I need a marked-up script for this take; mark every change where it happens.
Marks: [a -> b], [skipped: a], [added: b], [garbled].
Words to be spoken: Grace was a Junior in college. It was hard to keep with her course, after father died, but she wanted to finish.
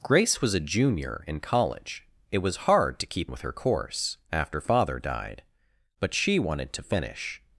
Grace was a Junior in college. It was hard to keep with her course, after father died, but she wanted to finish.